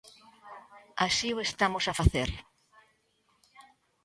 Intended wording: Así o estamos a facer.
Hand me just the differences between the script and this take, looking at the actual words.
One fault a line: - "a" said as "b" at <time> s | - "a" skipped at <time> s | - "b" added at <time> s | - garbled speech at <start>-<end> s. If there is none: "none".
none